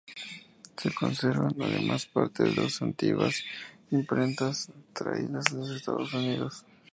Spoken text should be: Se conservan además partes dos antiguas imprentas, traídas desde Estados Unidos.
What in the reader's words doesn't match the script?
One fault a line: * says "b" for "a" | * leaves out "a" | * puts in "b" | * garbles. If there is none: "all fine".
all fine